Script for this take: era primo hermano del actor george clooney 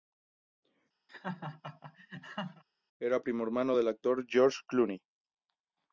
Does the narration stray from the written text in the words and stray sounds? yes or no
yes